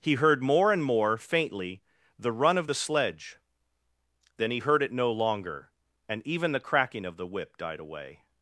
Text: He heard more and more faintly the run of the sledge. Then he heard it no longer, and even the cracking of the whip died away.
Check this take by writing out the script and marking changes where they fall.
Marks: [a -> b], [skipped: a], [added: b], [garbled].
He heard more and more faintly the run of the sledge. Then he heard it no longer, and even the cracking of the whip died away.